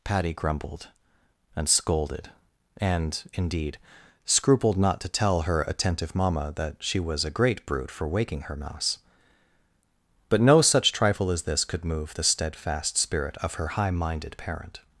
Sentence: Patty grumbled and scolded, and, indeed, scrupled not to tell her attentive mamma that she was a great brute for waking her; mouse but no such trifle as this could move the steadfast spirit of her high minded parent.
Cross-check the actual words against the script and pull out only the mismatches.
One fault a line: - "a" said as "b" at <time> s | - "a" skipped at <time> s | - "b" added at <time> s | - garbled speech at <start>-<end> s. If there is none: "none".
none